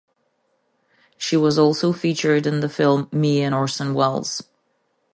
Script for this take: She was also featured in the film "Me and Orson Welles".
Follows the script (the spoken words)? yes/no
yes